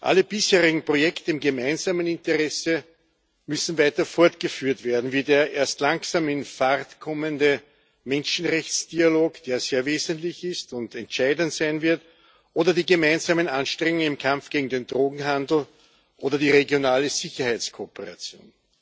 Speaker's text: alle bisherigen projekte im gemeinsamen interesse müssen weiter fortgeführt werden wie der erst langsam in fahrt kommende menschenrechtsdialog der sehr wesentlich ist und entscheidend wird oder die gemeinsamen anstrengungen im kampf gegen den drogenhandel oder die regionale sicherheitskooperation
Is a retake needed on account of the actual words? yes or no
yes